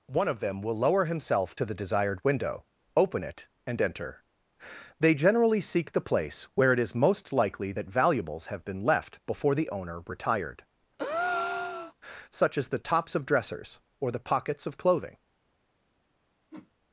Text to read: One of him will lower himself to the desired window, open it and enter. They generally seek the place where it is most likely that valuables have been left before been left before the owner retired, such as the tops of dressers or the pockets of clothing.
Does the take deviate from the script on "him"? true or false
true